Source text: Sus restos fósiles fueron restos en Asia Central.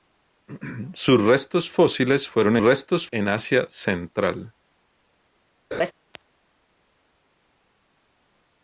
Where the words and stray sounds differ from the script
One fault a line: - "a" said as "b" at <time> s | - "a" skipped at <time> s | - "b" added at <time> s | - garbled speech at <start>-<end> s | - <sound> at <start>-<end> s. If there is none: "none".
- laugh at 5.7-5.9 s